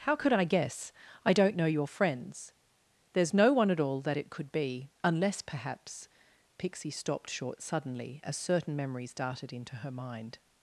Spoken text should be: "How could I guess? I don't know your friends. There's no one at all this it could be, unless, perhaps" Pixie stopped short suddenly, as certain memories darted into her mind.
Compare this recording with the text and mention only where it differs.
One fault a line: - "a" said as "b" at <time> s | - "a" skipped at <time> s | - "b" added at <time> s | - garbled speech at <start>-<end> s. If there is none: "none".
- "this" said as "that" at 4.0 s